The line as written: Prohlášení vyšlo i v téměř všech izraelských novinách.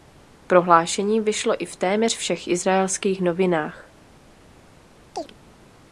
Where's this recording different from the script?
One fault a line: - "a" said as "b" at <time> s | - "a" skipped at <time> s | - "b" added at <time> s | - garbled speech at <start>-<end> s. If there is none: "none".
none